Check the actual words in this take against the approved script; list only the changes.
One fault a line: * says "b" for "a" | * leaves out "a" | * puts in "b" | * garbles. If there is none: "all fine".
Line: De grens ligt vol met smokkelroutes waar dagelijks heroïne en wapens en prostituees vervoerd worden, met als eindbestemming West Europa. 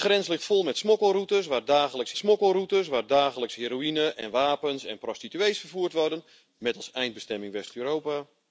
* puts in "smokkelroutes waar dagelijks"